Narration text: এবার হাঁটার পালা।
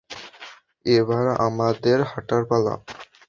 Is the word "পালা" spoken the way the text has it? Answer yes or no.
yes